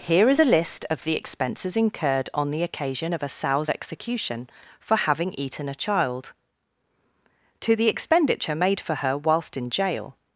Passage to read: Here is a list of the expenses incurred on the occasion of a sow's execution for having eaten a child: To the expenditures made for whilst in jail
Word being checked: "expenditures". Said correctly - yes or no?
no